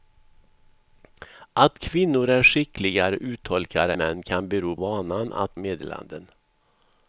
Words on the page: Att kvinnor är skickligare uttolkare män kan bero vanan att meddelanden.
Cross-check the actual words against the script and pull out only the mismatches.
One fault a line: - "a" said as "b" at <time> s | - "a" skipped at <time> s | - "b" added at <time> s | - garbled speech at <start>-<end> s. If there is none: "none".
none